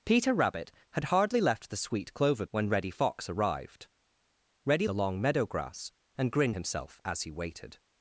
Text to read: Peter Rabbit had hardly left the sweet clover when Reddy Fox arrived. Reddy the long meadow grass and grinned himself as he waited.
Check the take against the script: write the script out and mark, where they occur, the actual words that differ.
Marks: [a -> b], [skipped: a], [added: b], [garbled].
Peter Rabbit had hardly left the sweet clover when Reddy Fox arrived. Reddy the long meadow grass and grinned himself as he waited.